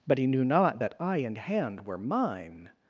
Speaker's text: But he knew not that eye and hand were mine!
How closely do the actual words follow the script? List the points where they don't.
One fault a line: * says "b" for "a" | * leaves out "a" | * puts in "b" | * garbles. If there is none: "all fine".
all fine